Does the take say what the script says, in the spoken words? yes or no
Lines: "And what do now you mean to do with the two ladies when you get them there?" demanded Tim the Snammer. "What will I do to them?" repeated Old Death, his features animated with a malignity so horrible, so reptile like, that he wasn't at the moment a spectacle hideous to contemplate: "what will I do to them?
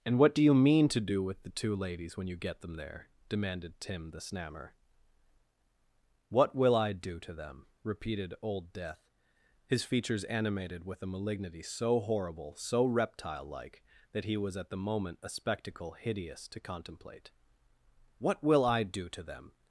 no